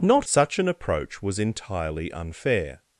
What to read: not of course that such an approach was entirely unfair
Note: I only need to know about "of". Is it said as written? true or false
false